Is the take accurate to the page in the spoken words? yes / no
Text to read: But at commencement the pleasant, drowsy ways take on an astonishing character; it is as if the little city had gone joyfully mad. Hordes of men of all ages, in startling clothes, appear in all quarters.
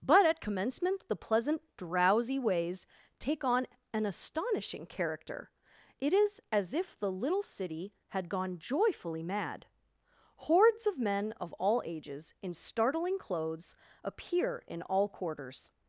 yes